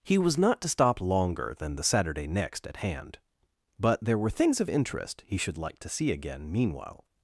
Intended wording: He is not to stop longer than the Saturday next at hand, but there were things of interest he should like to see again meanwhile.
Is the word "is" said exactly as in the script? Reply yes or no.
no